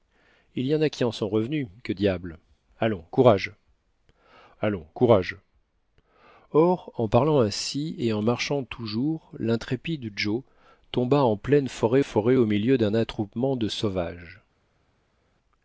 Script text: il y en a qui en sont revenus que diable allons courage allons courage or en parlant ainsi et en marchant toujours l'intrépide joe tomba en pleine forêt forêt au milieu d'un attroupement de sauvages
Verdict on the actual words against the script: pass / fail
pass